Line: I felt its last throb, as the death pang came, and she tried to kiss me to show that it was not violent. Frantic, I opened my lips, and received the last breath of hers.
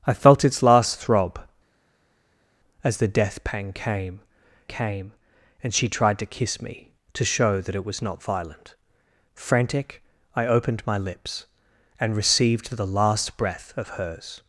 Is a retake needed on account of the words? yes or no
yes